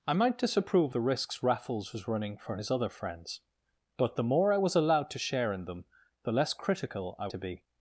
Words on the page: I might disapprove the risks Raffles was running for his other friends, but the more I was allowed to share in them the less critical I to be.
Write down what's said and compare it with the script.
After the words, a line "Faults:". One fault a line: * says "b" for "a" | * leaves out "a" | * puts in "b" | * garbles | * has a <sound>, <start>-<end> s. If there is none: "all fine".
I might disapprove the risks Raffles was running for his other friends, but the more I was allowed to share in them the less critical I to be.
Faults:
all fine